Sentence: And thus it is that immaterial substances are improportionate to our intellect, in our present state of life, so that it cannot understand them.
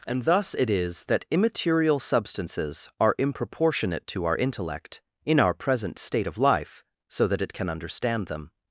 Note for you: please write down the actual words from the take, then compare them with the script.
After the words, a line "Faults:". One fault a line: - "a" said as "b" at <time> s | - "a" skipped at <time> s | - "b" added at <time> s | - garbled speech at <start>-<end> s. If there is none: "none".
And thus it is that immaterial substances are improportionate to our intellect, in our present state of life, so that it can understand them.
Faults:
- "cannot" said as "can" at 7.5 s